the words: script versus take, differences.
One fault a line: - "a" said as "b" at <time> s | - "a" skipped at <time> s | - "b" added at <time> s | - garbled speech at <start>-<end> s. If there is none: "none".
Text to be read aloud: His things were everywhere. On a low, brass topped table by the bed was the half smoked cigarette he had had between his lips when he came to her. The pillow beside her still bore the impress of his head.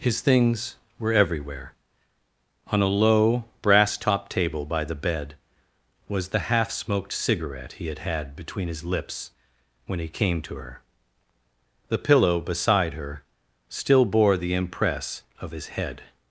none